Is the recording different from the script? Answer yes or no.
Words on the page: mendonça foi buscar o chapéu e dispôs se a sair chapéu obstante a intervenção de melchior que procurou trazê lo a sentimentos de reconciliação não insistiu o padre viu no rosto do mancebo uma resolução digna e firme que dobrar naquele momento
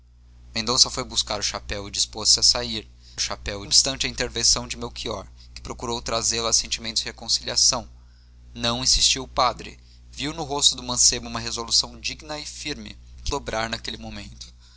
no